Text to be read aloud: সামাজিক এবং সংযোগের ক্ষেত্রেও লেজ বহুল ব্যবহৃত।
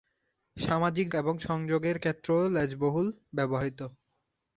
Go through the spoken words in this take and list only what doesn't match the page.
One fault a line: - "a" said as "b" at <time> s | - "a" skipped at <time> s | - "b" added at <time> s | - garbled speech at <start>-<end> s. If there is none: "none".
none